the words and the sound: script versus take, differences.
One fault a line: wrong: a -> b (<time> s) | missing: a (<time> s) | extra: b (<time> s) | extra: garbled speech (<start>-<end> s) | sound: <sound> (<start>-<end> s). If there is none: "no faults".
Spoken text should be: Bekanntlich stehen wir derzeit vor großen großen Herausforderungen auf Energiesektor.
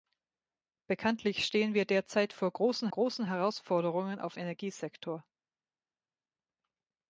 no faults